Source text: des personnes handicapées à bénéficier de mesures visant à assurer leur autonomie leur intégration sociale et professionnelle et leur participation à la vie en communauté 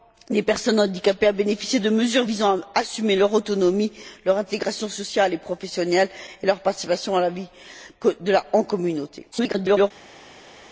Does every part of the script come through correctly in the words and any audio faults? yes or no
no